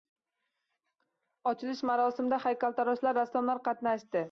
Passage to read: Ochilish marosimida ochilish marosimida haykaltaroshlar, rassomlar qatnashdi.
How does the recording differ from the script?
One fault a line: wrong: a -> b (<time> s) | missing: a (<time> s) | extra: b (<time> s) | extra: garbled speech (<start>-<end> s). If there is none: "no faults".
missing: ochilish marosimida (2.4 s)